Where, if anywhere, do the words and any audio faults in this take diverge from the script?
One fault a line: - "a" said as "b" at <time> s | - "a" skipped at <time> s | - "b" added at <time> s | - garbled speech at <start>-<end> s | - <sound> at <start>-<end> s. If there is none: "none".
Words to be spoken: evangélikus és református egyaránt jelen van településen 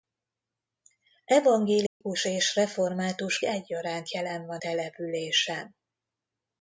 - dropout at 1.9-2.0 s